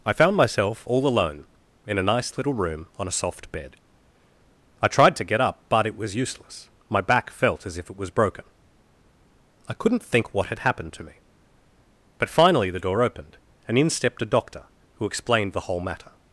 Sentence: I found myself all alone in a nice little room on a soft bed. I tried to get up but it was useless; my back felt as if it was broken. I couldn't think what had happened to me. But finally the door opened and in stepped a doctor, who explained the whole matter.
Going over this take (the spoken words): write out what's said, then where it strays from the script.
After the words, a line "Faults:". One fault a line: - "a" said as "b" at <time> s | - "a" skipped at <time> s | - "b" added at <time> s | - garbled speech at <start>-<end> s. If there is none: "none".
I found myself all alone in a nice little room on a soft bed. I tried to get up but it was useless; my back felt as if it was broken. I couldn't think what had happened to me. But finally the door opened and in stepped a doctor, who explained the whole matter.
Faults:
none